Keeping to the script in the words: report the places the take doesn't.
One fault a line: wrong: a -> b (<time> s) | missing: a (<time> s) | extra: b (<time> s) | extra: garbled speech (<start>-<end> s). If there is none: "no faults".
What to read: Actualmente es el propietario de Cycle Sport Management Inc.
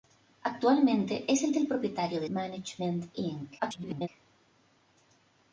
extra: el (1.6 s)
missing: Cycle Sport (2.3 s)
extra: garbled speech (3.6-4.1 s)